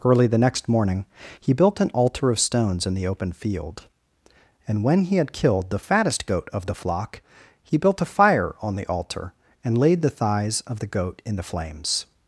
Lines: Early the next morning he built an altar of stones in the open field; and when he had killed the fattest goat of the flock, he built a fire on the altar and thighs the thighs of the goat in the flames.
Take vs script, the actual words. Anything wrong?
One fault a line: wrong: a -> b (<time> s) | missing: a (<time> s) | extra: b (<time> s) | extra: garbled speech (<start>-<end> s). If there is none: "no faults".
wrong: thighs -> laid (9.8 s)